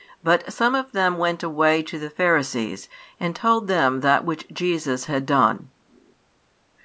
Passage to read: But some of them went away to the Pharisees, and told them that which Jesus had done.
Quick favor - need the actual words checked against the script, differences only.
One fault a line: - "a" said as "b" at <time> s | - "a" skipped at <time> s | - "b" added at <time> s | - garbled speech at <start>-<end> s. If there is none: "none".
none